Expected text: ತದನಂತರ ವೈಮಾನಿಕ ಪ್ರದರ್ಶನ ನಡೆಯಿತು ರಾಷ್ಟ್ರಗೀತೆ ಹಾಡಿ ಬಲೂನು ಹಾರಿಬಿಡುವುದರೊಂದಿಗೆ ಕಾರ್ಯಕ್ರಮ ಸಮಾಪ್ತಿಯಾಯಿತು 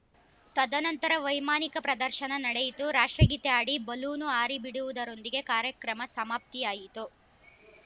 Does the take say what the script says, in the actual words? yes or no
yes